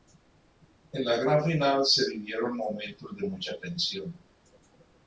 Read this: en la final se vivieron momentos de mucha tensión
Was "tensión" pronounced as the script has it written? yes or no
yes